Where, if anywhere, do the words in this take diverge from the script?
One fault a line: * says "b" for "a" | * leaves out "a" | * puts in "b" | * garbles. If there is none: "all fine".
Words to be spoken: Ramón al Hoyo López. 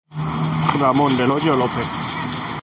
* says "del" for "al"